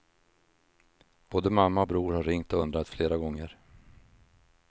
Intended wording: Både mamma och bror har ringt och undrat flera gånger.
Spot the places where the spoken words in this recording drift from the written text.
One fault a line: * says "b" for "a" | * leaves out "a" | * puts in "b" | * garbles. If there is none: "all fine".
all fine